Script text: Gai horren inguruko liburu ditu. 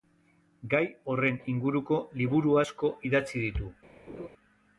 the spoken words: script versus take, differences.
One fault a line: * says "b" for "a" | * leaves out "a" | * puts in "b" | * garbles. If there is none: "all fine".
* puts in "asko idatzi"